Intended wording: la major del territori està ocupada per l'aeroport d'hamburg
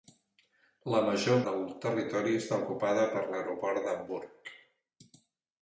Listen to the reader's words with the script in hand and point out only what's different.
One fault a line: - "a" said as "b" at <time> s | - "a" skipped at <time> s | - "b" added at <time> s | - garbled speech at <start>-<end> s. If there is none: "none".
none